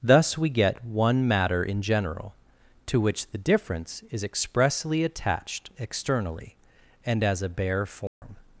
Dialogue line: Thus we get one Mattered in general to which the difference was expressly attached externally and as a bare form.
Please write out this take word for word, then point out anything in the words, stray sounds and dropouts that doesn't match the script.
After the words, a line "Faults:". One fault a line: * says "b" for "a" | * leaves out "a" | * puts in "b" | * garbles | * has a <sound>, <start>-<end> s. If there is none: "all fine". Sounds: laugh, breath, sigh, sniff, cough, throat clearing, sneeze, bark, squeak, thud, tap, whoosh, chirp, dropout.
Thus we get one Matter in general to which the difference is expressly attached externally and as a bare form.
Faults:
* says "Matter" for "Mattered"
* says "is" for "was"
* has a dropout, 8.1-8.2 s